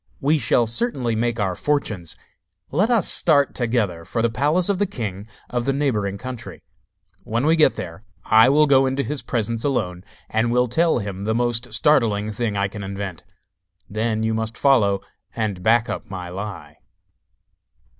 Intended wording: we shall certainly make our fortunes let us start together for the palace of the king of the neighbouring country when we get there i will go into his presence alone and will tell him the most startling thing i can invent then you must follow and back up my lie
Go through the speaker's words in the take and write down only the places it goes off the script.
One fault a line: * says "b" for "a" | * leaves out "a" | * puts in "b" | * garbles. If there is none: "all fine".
all fine